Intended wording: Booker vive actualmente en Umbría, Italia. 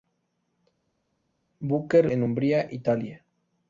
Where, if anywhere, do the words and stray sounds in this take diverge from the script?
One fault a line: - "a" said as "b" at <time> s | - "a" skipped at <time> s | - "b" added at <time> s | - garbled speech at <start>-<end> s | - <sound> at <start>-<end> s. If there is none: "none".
- "vive actualmente" skipped at 2.1 s